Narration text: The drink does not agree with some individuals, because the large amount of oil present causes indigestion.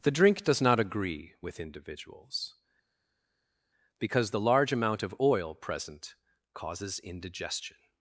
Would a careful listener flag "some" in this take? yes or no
yes